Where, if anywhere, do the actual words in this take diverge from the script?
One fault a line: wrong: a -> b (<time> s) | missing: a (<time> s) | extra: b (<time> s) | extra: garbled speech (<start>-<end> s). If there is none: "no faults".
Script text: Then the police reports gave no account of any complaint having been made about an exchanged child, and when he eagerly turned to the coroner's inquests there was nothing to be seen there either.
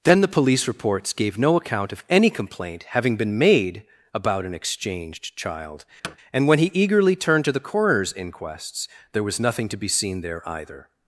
no faults